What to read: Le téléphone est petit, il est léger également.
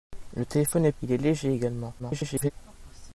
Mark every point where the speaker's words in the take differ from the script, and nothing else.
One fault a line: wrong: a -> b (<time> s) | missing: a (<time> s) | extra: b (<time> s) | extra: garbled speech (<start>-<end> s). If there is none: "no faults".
missing: petit (0.9 s)
extra: garbled speech (2.0-2.5 s)